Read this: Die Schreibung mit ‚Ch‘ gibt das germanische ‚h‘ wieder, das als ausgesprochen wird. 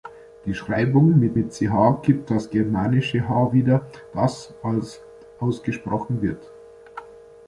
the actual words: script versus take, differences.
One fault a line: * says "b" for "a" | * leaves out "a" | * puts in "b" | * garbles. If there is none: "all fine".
* puts in "mit"